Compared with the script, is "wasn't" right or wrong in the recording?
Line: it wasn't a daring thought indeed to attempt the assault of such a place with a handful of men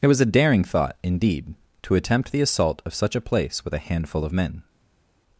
wrong